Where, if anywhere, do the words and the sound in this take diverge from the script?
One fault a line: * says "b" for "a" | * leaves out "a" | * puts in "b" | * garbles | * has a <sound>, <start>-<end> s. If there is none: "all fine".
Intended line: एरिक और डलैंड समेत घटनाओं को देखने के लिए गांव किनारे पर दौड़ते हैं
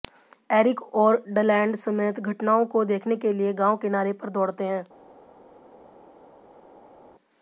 all fine